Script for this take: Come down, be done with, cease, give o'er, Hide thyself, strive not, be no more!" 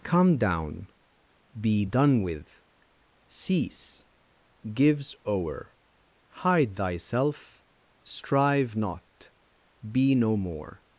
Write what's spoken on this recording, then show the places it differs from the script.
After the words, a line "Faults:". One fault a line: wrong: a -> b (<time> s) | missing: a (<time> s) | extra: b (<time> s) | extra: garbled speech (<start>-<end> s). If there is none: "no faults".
Come down, be done with, cease, gives o'er, Hide thyself, strive not, be no more!"
Faults:
wrong: give -> gives (4.7 s)